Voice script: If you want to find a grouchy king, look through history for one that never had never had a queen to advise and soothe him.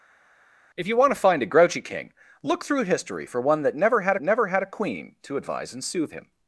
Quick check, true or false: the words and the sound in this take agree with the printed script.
true